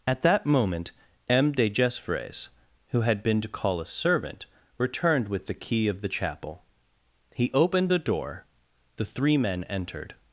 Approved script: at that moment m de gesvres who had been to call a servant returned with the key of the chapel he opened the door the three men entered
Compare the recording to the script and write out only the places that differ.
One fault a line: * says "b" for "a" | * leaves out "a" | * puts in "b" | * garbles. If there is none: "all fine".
all fine